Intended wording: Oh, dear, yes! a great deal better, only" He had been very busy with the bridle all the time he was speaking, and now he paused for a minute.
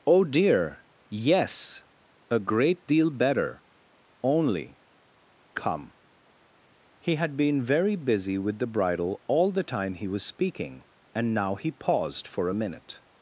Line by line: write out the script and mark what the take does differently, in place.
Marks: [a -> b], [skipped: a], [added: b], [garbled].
Oh, dear, yes! a great deal better, only" [added: come] He had been very busy with the bridle all the time he was speaking, and now he paused for a minute.